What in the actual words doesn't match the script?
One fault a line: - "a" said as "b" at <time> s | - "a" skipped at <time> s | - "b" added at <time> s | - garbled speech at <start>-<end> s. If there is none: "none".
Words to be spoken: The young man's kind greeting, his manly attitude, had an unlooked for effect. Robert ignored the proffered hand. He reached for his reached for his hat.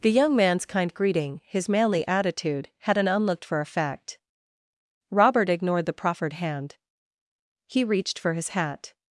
- "reached for his" skipped at 8.5 s